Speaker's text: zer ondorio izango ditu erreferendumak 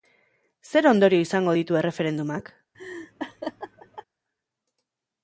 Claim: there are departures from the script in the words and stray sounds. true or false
true